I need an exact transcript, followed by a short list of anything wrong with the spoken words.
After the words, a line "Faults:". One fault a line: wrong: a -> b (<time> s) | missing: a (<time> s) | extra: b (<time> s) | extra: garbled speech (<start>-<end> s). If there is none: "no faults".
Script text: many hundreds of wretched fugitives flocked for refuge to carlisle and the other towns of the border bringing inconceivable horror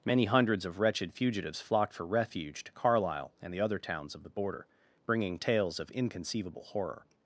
many hundreds of wretched fugitives flocked for refuge to carlisle and the other towns of the border bringing tales of inconceivable horror
Faults:
extra: tales of (5.4 s)